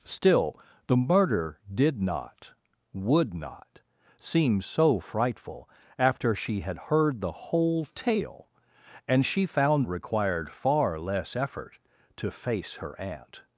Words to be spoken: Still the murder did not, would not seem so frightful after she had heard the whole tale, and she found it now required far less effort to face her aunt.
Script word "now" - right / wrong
wrong